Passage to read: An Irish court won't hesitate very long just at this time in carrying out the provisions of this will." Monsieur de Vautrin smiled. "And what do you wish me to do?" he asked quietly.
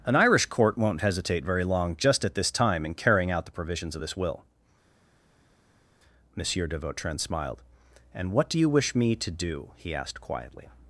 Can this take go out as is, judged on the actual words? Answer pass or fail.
pass